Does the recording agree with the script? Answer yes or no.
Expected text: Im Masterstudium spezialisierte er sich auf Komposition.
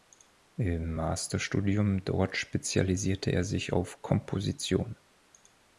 no